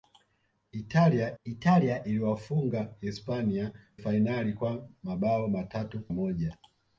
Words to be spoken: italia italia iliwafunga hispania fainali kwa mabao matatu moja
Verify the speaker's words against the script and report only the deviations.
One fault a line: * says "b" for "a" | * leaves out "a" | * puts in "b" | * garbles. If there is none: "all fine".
all fine